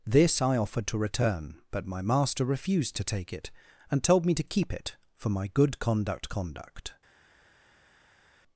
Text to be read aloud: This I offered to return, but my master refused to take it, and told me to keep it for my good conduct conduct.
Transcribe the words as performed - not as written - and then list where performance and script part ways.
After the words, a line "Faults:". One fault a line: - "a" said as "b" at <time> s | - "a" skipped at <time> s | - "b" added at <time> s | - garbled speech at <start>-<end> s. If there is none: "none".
This I offered to return, but my master refused to take it, and told me to keep it for my good conduct conduct.
Faults:
none